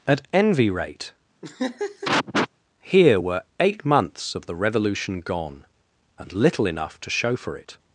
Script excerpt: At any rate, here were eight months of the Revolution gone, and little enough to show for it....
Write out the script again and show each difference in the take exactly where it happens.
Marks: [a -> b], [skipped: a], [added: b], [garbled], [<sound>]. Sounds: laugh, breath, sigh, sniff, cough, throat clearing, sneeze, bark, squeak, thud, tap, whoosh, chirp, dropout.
At [any -> envy] rate, [laugh] here were eight months of the Revolution gone, and little enough to show for it....